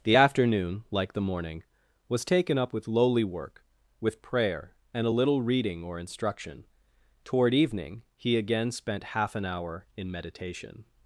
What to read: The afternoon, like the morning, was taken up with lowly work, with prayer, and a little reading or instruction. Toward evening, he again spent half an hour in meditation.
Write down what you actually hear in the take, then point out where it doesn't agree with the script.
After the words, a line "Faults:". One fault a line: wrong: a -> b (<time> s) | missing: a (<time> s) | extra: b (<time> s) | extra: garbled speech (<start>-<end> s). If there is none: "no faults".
The afternoon, like the morning, was taken up with lowly work, with prayer, and a little reading or instruction. Toward evening, he again spent half an hour in meditation.
Faults:
no faults